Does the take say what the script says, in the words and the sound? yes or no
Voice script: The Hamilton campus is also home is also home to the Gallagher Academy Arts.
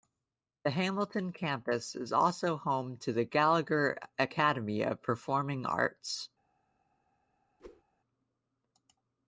no